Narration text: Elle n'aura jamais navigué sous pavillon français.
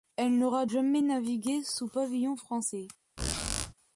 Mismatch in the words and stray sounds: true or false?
true